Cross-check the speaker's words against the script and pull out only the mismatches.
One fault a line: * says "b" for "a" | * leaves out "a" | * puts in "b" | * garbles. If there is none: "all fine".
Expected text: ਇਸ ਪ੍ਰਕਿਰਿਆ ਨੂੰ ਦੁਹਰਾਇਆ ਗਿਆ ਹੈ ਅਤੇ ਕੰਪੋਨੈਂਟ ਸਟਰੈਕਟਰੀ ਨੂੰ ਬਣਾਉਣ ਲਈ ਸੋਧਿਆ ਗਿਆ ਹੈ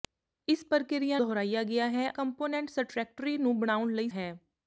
* leaves out "ਨੂੰ"
* leaves out "ਅਤੇ"
* leaves out "ਸੋਧਿਆ ਗਿਆ"